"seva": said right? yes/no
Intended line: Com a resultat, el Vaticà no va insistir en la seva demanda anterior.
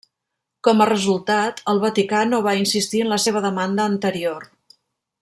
yes